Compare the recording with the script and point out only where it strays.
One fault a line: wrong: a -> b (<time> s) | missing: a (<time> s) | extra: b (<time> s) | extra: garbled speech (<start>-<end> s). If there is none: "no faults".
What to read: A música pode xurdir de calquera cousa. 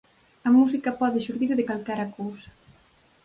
no faults